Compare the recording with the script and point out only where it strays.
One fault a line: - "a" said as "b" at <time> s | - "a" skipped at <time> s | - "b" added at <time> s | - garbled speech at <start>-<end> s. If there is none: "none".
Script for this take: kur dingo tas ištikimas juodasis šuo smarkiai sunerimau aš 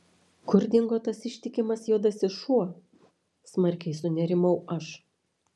none